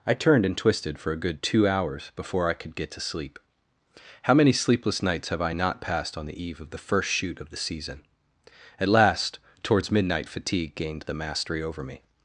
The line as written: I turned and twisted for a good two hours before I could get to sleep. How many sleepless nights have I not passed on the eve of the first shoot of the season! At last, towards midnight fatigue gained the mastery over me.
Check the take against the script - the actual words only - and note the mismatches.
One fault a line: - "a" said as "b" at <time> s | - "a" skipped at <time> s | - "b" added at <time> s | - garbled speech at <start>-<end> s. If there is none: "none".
none